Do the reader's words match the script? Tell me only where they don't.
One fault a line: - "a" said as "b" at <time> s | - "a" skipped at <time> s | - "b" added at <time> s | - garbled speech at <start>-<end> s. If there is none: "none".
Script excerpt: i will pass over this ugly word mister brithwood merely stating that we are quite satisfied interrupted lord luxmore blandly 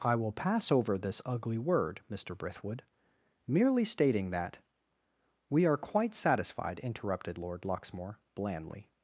none